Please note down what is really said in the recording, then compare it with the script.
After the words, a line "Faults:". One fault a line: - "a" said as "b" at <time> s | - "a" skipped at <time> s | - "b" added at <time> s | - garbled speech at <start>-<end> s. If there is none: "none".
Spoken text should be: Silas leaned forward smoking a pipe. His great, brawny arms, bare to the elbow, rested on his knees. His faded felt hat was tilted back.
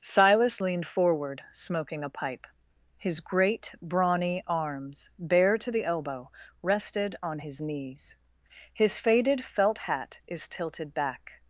Silas leaned forward smoking a pipe. His great, brawny arms, bare to the elbow, rested on his knees. His faded felt hat is tilted back.
Faults:
- "was" said as "is" at 10.3 s